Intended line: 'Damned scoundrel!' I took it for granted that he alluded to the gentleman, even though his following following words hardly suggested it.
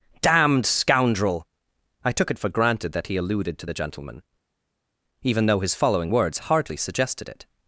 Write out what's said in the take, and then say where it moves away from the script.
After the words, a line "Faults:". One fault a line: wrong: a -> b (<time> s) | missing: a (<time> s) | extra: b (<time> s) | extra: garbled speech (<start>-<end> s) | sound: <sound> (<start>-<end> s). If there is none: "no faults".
'Damned scoundrel!' I took it for granted that he alluded to the gentleman, even though his following words hardly suggested it.
Faults:
missing: following (6.1 s)